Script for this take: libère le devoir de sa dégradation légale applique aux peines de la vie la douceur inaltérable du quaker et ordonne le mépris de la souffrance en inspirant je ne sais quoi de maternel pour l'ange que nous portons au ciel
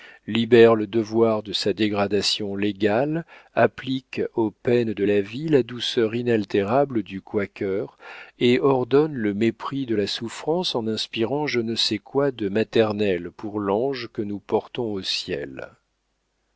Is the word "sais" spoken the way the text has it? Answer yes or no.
yes